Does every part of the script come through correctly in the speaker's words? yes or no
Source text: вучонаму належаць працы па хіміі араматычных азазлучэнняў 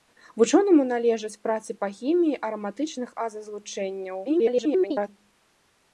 no